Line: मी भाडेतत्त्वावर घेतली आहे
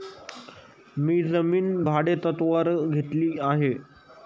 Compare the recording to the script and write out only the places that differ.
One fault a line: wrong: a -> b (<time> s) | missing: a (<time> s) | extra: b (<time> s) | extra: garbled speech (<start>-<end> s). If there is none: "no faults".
extra: जमीन (1.2 s)